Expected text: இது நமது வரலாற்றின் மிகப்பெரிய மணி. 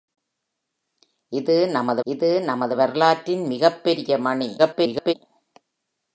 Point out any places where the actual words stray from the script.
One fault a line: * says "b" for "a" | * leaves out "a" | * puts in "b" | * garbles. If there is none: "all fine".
* puts in "இது நமது"
* garbles